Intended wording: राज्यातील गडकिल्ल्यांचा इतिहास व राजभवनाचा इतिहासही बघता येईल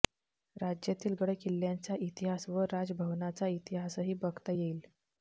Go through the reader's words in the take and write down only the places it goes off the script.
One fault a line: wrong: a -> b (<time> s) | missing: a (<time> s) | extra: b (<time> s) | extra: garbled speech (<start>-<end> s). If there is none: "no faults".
no faults